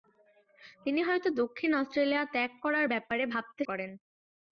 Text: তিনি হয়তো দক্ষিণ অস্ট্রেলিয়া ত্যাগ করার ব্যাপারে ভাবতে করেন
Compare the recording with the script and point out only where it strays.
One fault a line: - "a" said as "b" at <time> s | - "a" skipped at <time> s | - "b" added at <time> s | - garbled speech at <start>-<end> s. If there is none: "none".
none